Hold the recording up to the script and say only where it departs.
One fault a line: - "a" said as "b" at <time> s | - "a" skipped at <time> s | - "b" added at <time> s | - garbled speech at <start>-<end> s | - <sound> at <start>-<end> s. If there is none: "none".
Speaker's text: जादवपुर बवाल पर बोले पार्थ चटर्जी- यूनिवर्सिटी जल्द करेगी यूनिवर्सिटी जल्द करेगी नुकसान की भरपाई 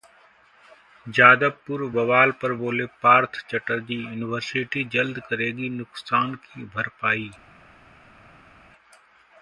- "यूनिवर्सिटी जल्द करेगी" skipped at 5.7 s